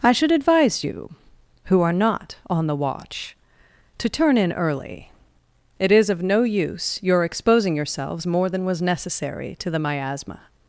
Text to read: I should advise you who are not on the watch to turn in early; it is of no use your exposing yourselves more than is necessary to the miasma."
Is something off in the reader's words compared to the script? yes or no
yes